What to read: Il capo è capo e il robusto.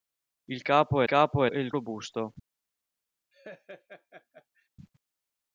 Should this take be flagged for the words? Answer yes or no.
no